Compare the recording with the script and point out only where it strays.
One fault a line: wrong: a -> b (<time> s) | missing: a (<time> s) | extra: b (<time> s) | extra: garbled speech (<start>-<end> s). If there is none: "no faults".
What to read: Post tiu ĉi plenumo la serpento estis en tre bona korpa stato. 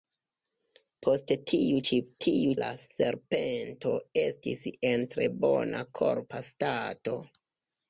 wrong: plenumo -> tiu (2.2 s)